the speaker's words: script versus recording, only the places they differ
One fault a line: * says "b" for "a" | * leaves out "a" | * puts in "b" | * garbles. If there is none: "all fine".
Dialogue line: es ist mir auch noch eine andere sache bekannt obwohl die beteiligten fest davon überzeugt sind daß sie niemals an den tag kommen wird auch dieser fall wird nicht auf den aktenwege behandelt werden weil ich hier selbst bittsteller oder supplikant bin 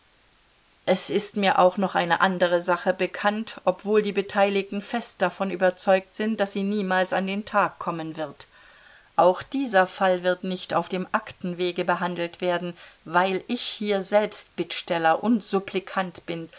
* says "dem" for "den"
* says "und" for "oder"